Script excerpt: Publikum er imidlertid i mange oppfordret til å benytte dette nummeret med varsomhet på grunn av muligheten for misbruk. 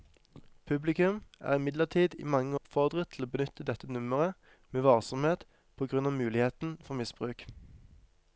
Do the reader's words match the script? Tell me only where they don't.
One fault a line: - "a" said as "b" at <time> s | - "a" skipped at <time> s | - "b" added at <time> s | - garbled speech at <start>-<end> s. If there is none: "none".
none